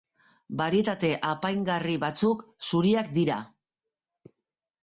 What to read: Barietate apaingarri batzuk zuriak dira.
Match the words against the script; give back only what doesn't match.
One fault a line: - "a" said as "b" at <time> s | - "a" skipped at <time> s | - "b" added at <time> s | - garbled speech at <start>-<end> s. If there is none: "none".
none